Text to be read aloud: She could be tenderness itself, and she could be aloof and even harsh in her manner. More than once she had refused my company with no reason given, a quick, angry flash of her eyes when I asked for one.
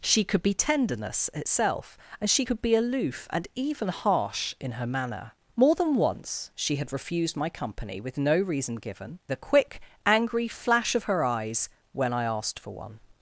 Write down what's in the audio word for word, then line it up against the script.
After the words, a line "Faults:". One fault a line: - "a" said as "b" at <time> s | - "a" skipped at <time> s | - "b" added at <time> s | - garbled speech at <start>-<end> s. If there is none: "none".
She could be tenderness itself, and she could be aloof and even harsh in her manner. More than once she had refused my company with no reason given, a quick, angry flash of her eyes when I asked for one.
Faults:
none